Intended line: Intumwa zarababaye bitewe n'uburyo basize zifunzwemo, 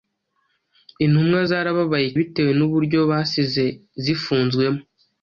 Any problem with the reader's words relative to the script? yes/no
no